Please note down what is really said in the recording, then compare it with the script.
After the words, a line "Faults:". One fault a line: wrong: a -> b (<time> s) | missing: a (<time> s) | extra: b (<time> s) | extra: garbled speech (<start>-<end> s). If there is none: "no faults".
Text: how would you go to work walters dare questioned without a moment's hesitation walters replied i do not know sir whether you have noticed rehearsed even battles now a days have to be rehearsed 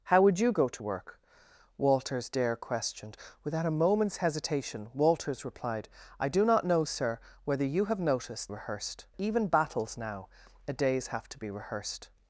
how would you go to work walters dare questioned without a moment's hesitation walters replied i do not know sir whether you have noticed rehearsed even battles now a days have to be rehearsed
Faults:
no faults